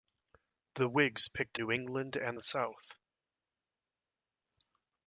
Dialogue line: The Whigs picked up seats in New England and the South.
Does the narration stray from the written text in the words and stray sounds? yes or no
yes